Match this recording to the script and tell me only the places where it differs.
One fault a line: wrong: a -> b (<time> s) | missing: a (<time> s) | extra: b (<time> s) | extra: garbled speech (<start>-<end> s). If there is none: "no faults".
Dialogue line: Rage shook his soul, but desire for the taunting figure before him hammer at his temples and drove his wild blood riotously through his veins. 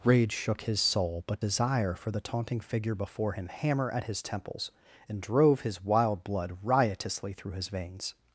no faults